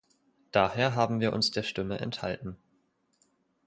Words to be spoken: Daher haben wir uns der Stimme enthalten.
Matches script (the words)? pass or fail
pass